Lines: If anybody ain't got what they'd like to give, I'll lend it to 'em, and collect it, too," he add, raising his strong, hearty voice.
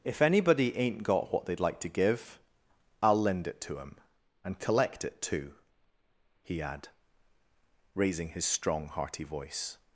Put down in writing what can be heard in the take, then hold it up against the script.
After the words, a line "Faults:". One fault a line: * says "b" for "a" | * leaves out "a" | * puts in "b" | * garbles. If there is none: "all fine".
If anybody ain't got what they'd like to give, I'll lend it to 'em, and collect it, too," he add, raising his strong, hearty voice.
Faults:
all fine